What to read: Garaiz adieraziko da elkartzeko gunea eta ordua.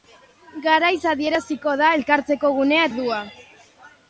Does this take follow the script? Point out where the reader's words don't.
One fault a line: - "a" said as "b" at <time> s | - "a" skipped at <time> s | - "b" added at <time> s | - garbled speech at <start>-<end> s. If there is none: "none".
- "eta" skipped at 2.9 s